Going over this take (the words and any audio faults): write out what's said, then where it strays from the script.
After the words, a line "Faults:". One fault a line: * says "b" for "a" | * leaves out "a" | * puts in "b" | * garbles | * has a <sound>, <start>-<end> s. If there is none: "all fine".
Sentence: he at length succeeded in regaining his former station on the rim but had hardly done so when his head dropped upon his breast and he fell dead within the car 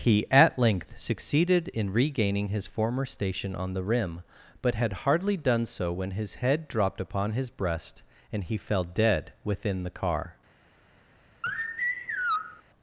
he at length succeeded in regaining his former station on the rim but had hardly done so when his head dropped upon his breast and he fell dead within the car
Faults:
* has a sigh, 11.4-12.6 s